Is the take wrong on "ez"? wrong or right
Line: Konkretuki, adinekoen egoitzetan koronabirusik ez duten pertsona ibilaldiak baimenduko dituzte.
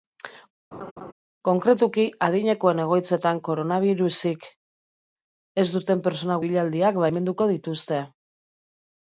right